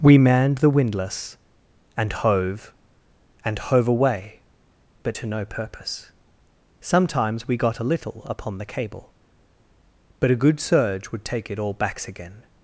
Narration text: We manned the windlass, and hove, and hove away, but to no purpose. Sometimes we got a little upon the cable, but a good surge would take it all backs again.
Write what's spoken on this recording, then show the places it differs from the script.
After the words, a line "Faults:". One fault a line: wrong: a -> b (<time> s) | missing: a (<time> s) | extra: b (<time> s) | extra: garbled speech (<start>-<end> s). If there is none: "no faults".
We manned the windlass, and hove, and hove away, but to no purpose. Sometimes we got a little upon the cable, but a good surge would take it all backs again.
Faults:
no faults